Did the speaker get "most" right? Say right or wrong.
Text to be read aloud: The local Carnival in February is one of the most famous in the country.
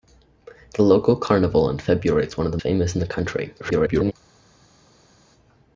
wrong